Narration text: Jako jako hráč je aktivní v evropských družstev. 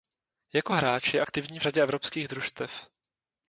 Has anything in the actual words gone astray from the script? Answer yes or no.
yes